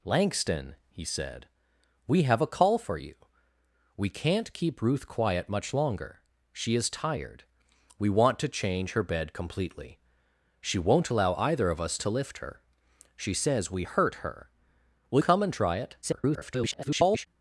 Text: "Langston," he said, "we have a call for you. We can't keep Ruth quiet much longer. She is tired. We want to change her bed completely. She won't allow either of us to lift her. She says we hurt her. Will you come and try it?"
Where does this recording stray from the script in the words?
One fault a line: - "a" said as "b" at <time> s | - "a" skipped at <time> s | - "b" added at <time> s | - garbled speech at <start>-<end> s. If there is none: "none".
- "you" skipped at 15.2 s
- garbled speech at 16.0-17.3 s